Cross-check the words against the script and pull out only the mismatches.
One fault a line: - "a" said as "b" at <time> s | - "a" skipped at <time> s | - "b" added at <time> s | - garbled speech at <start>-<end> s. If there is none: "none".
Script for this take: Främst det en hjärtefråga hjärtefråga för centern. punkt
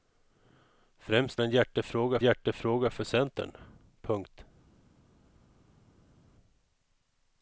none